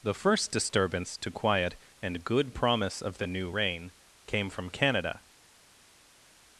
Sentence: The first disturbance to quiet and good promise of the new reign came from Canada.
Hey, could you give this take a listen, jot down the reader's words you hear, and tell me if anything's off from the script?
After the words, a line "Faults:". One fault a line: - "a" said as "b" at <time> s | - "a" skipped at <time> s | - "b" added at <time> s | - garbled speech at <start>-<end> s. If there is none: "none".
The first disturbance to quiet and good promise of the new reign came from Canada.
Faults:
none